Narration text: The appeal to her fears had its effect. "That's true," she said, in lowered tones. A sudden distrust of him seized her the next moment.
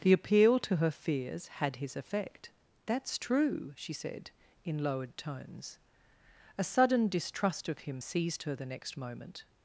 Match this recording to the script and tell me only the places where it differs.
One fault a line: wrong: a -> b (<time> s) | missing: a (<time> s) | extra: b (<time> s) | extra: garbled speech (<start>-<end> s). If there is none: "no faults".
wrong: its -> his (1.8 s)